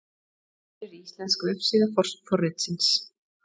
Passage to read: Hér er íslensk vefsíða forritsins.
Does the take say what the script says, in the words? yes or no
yes